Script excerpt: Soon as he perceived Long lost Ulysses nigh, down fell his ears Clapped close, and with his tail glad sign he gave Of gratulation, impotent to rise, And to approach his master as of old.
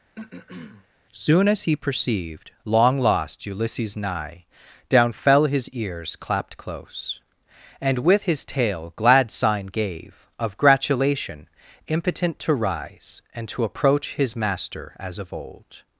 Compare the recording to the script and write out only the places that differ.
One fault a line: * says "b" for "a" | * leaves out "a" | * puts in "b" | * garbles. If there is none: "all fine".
* leaves out "he"